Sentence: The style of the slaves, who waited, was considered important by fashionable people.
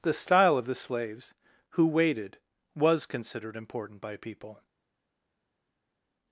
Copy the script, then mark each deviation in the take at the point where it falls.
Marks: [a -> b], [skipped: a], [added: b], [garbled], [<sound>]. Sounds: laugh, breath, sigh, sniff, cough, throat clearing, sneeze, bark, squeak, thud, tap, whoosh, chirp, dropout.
The style of the slaves, who waited, was considered important by [skipped: fashionable] people.